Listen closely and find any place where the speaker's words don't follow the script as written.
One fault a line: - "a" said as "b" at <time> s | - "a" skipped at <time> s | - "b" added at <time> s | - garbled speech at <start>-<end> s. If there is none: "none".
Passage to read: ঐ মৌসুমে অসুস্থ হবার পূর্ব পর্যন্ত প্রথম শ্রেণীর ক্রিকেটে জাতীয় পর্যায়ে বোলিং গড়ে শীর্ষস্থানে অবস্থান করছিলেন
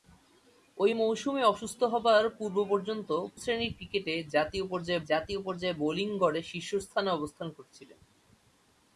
- "প্রথম" skipped at 3.1 s
- "জাতীয় পর্যায়ে" added at 5.1 s